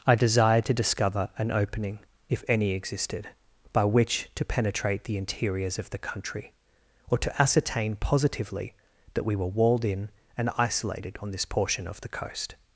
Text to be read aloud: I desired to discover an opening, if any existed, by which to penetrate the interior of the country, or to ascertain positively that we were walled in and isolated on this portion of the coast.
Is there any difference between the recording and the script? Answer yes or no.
yes